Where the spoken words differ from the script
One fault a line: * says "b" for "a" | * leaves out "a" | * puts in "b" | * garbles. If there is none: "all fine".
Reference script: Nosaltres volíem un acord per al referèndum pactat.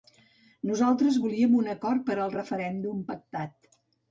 all fine